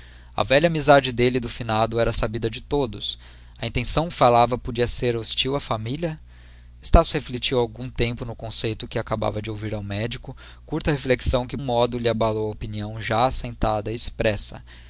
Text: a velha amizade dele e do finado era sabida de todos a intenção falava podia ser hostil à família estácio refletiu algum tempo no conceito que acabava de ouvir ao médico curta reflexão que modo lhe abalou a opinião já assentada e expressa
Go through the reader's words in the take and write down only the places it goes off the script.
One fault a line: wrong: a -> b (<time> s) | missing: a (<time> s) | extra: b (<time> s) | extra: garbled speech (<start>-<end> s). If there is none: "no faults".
no faults